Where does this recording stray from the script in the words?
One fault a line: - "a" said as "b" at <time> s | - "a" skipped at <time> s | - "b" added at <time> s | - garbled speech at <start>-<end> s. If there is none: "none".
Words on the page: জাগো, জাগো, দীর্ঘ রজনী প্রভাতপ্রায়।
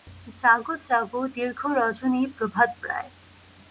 none